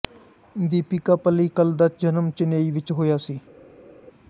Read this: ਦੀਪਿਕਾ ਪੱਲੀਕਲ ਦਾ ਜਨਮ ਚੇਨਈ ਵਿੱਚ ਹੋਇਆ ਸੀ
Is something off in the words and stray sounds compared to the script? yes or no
no